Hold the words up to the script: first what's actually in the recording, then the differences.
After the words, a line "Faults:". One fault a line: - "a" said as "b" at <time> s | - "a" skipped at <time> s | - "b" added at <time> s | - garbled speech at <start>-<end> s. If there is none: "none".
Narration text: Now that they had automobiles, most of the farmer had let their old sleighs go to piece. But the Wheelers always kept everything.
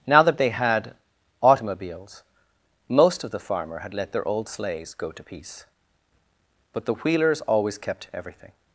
Now that they had automobiles, most of the farmer had let their old sleighs go to piece. But the Wheelers always kept everything.
Faults:
none